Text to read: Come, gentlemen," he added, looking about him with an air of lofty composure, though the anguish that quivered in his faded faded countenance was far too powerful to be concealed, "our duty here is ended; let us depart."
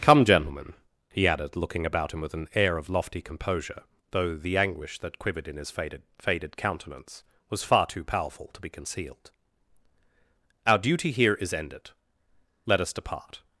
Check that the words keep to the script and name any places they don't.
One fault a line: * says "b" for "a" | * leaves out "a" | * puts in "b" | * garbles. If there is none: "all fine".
all fine